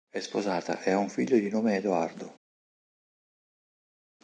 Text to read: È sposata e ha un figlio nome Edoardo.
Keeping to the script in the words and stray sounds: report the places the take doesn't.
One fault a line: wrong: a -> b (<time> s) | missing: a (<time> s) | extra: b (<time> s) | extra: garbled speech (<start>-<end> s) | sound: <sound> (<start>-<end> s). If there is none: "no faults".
extra: di (1.4 s)